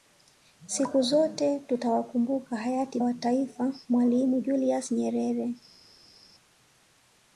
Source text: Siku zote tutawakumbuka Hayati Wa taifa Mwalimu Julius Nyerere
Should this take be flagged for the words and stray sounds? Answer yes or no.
no